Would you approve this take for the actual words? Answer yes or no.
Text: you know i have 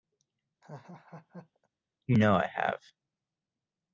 yes